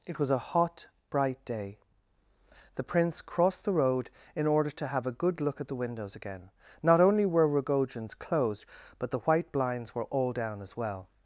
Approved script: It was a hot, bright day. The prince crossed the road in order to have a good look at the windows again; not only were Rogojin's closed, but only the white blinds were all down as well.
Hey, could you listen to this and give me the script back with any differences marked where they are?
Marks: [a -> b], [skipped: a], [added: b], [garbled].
It was a hot, bright day. The prince crossed the road in order to have a good look at the windows again; not only were Rogojin's closed, but [skipped: only] the white blinds were all down as well.